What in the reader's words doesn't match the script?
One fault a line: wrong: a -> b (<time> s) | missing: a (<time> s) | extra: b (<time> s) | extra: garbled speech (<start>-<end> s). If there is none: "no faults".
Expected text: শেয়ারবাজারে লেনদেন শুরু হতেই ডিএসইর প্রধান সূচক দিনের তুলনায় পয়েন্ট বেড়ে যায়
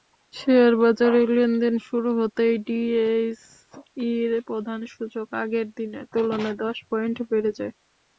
extra: আগের (5.4 s)
extra: দশ (6.6 s)